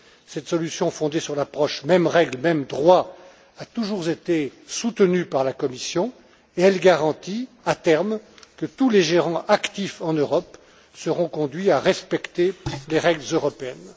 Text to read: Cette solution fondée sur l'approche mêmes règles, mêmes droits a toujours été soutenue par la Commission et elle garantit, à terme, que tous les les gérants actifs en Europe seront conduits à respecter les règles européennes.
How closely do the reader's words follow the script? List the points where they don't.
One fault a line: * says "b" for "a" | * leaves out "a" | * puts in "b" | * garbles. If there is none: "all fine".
* leaves out "les"